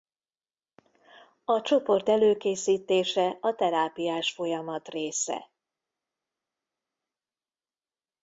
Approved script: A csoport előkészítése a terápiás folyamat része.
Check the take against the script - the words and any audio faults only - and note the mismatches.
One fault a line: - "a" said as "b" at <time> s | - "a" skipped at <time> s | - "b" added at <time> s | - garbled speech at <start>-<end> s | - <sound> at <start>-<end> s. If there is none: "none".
none